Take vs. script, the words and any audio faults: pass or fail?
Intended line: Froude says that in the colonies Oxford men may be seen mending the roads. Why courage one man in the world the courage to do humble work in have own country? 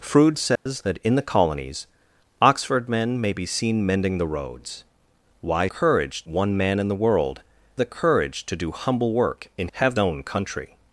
fail